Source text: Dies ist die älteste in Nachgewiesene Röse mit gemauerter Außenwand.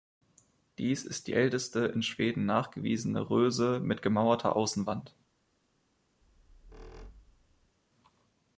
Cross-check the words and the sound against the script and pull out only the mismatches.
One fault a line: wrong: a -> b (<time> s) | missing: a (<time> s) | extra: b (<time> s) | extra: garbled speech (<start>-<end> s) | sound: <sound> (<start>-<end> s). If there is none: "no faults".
extra: Schweden (2.0 s)
sound: squeak (6.2-7.8 s)